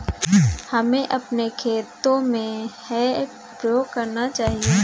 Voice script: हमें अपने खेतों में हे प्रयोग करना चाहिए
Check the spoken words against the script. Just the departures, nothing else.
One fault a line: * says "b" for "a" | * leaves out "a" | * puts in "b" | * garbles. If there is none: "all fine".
all fine